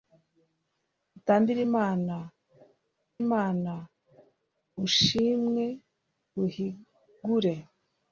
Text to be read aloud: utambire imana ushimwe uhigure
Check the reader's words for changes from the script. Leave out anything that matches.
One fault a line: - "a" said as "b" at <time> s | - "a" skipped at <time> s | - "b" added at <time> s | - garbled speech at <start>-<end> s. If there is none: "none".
- "imana" added at 3.2 s